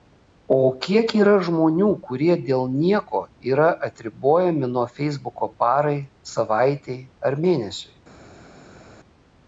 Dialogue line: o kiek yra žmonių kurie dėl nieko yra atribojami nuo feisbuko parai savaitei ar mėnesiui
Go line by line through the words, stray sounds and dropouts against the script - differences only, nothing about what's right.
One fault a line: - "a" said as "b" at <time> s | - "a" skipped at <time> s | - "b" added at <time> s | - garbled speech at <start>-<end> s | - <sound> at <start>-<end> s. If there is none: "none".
none